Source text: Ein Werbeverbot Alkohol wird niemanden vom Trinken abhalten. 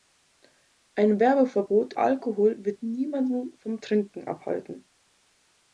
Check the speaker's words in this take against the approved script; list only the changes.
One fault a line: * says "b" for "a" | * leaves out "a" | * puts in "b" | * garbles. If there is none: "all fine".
all fine